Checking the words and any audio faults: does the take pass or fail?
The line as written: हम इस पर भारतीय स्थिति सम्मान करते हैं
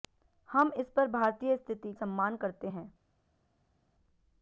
pass